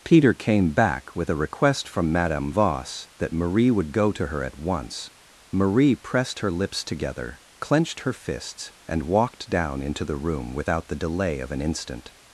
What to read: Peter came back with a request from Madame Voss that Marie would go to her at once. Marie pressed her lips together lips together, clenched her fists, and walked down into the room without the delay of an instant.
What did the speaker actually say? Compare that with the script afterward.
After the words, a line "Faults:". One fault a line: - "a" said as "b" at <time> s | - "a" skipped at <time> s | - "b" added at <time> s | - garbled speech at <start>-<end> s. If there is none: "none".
Peter came back with a request from Madame Voss that Marie would go to her at once. Marie pressed her lips together, clenched her fists, and walked down into the room without the delay of an instant.
Faults:
- "lips together" skipped at 7.4 s